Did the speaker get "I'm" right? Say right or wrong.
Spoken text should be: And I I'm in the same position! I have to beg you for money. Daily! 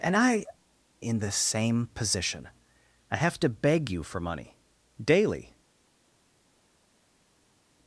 wrong